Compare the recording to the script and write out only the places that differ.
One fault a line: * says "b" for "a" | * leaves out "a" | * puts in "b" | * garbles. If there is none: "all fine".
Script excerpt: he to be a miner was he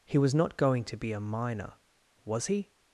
* puts in "was not going"